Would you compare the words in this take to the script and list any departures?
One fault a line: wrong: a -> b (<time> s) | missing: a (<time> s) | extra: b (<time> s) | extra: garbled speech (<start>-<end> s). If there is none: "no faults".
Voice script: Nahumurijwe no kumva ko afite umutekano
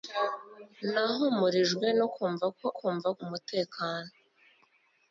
wrong: afite -> kumva (2.8 s)